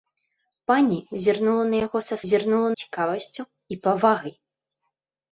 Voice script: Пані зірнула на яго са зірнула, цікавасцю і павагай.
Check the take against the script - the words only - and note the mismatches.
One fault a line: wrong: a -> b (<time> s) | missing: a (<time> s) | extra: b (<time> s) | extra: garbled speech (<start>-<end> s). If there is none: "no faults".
no faults